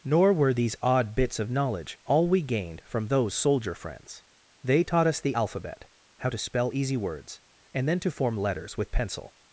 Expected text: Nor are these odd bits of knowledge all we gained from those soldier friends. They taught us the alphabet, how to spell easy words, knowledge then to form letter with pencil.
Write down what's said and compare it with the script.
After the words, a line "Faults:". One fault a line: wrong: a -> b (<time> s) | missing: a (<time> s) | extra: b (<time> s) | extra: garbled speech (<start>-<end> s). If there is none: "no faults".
Nor were these odd bits of knowledge all we gained from those soldier friends. They taught us the alphabet, how to spell easy words, and then to form letters with pencil.
Faults:
wrong: are -> were (0.3 s)
wrong: knowledge -> and (7.7 s)
wrong: letter -> letters (8.4 s)